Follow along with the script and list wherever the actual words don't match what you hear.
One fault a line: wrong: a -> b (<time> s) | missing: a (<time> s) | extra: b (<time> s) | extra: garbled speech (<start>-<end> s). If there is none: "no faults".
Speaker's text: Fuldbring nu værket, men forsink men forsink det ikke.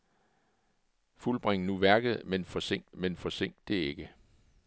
no faults